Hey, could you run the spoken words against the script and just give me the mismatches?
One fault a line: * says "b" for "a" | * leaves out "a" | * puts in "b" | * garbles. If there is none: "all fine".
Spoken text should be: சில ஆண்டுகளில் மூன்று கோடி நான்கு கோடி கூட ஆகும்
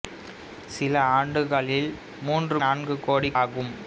* leaves out "கோடி"
* leaves out "கூட"